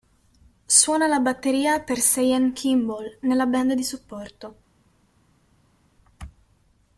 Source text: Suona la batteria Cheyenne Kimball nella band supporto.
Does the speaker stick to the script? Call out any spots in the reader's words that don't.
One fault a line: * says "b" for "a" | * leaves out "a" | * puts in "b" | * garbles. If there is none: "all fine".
* puts in "per"
* puts in "di"